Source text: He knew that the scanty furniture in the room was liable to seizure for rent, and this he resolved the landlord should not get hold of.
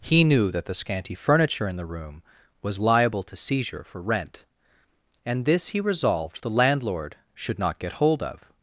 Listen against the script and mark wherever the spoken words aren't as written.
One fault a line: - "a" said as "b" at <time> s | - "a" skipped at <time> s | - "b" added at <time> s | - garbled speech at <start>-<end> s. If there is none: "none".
none